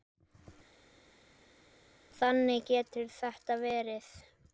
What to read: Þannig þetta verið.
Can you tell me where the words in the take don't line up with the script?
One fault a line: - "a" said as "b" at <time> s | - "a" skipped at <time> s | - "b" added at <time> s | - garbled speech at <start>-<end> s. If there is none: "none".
- "getur" added at 2.7 s